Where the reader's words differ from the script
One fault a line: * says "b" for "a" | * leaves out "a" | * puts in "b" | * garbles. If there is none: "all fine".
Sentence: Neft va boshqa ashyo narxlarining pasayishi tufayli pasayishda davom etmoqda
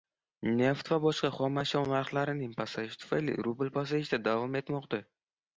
* puts in "xom"
* puts in "rubl"